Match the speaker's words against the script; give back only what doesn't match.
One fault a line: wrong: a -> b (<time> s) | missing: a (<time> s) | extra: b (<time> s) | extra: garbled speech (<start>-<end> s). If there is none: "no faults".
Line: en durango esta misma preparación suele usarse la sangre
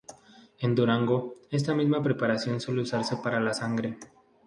extra: para (3.2 s)